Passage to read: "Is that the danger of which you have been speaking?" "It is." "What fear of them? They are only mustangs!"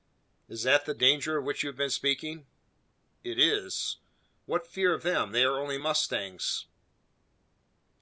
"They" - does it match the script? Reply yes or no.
yes